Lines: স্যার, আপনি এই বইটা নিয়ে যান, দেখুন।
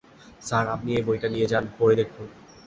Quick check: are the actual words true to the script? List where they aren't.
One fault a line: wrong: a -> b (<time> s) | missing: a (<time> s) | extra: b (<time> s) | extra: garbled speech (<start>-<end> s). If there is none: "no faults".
extra: পড়ে (1.8 s)